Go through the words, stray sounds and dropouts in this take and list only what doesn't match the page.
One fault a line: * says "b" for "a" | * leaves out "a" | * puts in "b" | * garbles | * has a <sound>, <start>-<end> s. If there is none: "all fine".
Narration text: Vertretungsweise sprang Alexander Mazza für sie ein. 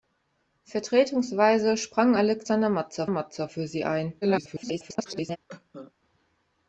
* puts in "Mazza"
* garbles
* has a cough, 5.5-5.9 s